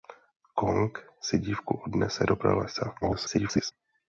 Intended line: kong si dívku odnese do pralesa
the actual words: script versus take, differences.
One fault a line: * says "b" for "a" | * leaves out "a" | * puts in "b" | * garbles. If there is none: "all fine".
* garbles